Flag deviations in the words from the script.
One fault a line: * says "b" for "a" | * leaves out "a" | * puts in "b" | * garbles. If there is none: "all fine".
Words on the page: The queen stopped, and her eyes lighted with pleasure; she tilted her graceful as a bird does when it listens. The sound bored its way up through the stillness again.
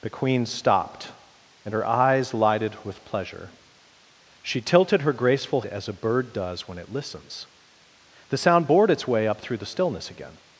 all fine